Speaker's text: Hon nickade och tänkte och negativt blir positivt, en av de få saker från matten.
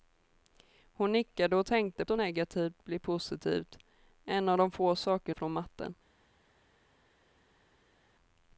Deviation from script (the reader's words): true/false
false